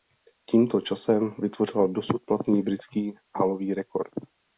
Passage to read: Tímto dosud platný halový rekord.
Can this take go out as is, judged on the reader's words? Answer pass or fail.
fail